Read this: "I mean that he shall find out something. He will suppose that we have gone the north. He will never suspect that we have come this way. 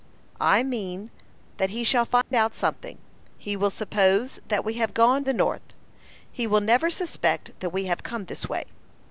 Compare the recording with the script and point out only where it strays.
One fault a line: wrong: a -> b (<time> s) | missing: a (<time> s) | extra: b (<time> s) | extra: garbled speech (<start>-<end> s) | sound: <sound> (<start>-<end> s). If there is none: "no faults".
sound: dropout (2.2-2.3 s)